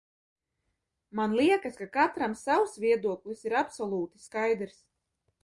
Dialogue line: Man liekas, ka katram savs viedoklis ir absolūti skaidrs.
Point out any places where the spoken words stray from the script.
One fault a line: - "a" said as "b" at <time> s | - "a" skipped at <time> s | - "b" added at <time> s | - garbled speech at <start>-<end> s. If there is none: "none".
none